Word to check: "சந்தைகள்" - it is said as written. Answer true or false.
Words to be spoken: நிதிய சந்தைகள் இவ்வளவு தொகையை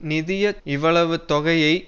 false